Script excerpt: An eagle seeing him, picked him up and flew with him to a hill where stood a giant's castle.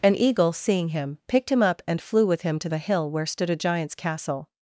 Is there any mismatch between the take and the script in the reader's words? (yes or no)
no